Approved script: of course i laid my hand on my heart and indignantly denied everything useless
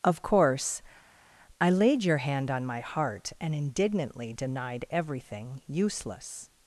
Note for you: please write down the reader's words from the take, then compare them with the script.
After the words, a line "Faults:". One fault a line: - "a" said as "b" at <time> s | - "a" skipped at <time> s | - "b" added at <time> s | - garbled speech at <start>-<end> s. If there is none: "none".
of course i laid your hand on my heart and indignantly denied everything useless
Faults:
- "my" said as "your" at 2.0 s